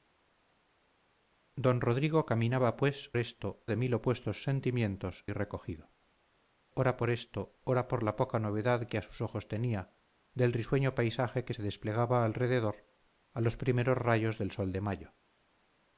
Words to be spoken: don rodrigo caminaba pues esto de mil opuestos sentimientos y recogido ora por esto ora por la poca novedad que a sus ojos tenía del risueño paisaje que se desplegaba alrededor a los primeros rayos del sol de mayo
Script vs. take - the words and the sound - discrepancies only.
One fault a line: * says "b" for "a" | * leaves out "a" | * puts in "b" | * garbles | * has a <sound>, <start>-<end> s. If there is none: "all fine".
all fine